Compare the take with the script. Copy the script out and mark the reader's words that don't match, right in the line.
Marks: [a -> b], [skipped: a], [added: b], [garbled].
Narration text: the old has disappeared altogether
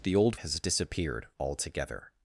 the old has disappeared altogether